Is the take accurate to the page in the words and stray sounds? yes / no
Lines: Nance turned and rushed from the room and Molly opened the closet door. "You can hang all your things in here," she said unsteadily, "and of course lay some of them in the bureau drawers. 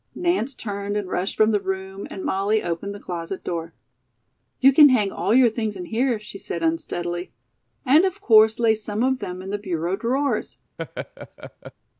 no